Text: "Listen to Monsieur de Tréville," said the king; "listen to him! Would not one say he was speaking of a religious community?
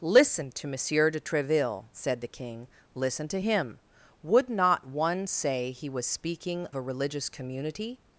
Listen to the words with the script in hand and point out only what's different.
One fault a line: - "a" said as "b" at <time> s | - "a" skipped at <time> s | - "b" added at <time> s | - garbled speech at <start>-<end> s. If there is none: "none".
- "of" skipped at 6.7 s